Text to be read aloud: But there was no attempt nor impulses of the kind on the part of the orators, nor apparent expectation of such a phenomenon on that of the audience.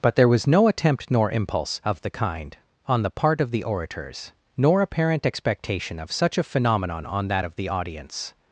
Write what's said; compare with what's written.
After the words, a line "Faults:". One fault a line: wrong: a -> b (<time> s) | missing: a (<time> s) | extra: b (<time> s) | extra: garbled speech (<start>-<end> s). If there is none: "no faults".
But there was no attempt nor impulse of the kind on the part of the orators, nor apparent expectation of such a phenomenon on that of the audience.
Faults:
wrong: impulses -> impulse (1.3 s)